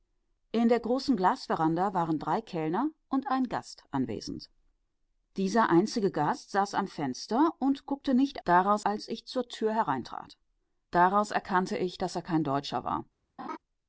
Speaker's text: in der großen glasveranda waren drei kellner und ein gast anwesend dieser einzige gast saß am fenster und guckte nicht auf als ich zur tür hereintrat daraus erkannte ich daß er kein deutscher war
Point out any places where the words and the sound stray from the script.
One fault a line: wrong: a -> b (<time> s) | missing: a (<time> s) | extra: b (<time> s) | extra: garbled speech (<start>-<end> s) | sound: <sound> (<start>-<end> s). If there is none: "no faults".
wrong: auf -> daraus (8.4 s)
sound: laugh (13.4-13.6 s)